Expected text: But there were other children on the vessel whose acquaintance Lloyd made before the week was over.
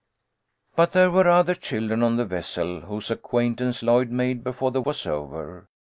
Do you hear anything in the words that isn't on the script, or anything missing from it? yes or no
yes